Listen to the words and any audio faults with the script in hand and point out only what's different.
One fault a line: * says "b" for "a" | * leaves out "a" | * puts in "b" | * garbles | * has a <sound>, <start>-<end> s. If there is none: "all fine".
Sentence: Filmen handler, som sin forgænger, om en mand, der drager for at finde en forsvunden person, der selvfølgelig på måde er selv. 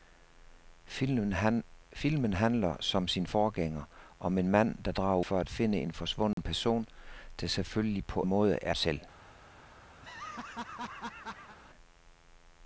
* has a dropout, 6.3-6.4 s
* has a laugh, 10.0-11.6 s